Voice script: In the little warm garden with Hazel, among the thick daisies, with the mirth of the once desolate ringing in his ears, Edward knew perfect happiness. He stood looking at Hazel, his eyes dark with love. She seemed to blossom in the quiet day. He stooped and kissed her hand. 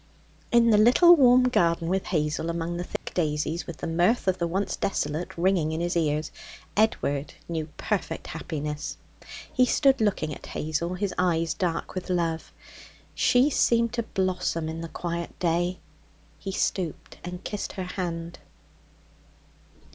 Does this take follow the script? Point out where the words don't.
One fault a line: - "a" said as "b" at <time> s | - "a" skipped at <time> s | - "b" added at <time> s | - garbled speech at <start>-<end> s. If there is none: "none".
none